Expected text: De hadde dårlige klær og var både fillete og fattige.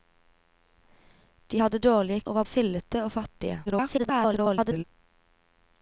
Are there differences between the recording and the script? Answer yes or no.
yes